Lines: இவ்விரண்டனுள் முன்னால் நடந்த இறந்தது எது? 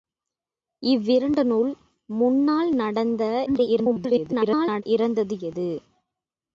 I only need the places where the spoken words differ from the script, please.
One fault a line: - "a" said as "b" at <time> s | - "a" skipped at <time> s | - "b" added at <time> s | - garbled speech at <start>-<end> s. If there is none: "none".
- garbled speech at 3.5-4.8 s